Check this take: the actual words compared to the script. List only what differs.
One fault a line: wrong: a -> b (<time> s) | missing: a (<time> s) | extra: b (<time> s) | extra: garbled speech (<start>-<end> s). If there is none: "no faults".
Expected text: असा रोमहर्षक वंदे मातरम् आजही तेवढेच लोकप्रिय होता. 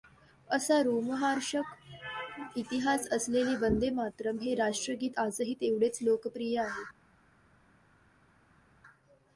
extra: इतिहास असलेले (2.6 s)
extra: हे राष्ट्रगीत (4.4 s)
wrong: होता -> आहे (6.6 s)